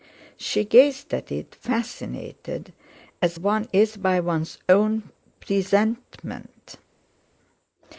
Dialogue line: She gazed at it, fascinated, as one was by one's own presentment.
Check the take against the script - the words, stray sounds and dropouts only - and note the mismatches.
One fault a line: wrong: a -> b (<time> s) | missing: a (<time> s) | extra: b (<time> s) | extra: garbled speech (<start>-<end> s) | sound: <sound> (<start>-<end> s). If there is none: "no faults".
wrong: was -> is (3.7 s)